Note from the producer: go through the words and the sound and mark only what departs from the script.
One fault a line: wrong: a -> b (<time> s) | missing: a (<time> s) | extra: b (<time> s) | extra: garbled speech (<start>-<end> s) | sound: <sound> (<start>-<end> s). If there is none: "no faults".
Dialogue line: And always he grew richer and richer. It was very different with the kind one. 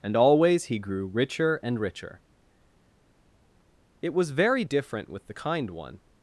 no faults